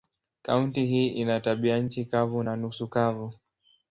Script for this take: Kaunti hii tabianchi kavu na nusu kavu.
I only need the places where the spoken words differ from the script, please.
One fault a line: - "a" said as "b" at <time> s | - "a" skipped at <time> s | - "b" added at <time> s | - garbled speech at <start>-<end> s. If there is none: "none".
- "ina" added at 1.1 s